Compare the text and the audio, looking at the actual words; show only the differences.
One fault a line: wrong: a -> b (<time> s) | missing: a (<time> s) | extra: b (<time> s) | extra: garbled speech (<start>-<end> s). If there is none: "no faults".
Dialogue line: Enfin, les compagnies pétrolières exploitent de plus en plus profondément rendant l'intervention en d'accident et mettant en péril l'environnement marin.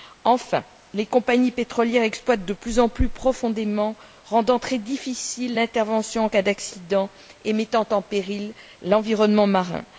extra: très difficile (4.6 s)
extra: cas (6.3 s)